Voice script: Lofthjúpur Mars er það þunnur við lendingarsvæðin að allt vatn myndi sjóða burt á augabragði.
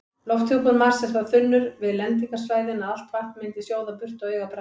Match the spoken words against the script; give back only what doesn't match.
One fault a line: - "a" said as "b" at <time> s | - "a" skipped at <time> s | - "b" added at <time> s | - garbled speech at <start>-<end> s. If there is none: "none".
none